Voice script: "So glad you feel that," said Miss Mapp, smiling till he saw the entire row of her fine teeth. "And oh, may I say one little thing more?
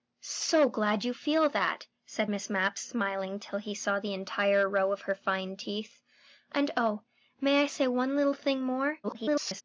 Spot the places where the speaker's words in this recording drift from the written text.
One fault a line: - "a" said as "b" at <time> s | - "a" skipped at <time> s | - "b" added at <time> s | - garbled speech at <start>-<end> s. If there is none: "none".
- garbled speech at 9.0-9.6 s